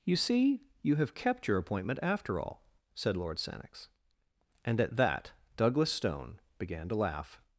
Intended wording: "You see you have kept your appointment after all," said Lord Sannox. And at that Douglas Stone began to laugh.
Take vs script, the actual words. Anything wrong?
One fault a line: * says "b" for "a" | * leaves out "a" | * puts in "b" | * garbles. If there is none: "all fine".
all fine